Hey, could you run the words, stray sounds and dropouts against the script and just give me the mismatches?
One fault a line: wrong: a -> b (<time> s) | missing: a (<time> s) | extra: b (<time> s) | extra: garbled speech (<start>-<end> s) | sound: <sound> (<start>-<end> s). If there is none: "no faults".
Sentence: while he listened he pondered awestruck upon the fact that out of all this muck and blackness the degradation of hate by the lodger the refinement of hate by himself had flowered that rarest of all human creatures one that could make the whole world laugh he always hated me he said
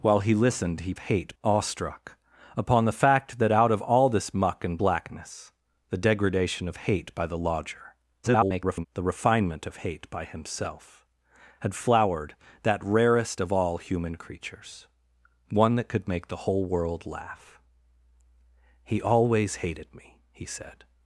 wrong: pondered -> hate (1.0 s)
extra: garbled speech (8.2-8.9 s)